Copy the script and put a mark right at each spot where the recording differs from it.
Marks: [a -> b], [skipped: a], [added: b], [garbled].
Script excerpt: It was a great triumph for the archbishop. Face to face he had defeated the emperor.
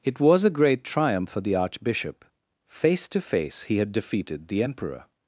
It was a great triumph for the archbishop. Face to face he had defeated the emperor.